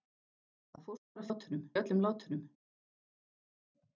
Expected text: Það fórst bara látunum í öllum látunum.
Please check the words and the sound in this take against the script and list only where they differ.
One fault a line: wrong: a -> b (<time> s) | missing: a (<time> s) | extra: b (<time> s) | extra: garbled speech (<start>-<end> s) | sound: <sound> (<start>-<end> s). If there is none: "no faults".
no faults